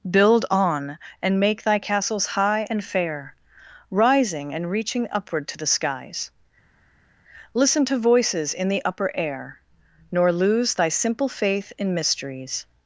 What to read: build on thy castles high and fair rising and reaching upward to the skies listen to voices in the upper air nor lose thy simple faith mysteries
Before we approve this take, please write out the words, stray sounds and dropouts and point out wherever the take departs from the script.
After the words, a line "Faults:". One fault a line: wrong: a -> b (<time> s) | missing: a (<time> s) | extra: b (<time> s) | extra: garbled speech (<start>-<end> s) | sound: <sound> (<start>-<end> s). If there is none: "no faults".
build on and make thy castles high and fair rising and reaching upward to the skies listen to voices in the upper air nor lose thy simple faith in mysteries
Faults:
extra: and make (1.2 s)
extra: in (11.8 s)